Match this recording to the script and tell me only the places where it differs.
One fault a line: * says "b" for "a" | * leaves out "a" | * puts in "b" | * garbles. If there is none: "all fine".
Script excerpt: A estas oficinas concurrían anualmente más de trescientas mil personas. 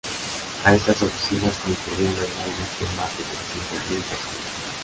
all fine